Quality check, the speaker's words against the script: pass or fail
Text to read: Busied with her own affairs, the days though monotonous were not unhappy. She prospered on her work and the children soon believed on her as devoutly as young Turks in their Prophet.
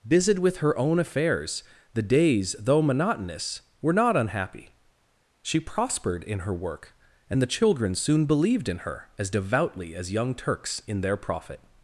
fail